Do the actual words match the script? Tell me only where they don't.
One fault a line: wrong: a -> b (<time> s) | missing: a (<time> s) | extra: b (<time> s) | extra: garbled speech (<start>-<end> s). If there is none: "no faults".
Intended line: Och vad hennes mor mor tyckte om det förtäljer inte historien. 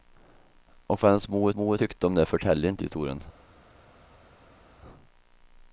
no faults